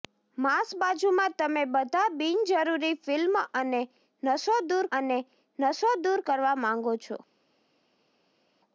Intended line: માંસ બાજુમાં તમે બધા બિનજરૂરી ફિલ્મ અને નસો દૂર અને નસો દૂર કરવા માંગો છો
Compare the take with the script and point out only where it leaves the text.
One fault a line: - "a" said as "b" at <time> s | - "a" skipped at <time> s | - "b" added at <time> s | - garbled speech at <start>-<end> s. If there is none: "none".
none